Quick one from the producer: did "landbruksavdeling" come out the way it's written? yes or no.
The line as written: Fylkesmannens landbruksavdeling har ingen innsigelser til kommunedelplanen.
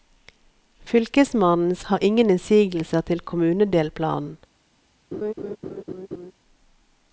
no